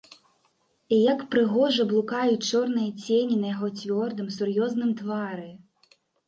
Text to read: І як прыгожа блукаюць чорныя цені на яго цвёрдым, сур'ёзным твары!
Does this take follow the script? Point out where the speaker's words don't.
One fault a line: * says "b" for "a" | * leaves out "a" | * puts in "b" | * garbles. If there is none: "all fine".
all fine